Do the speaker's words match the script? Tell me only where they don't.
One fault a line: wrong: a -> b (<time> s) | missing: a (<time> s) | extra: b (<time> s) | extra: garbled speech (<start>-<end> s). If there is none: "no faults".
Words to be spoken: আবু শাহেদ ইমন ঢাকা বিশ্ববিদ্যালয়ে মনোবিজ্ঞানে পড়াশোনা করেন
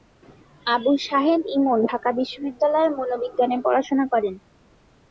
no faults